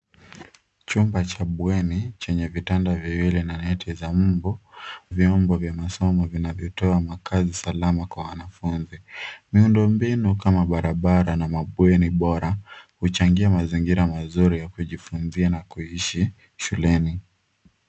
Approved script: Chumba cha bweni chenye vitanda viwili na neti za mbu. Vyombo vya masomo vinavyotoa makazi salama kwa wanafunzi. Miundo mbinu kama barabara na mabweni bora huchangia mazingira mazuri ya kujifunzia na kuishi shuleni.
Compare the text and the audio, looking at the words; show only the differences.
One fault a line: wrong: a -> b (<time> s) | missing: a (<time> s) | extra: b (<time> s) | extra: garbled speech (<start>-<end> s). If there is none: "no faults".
no faults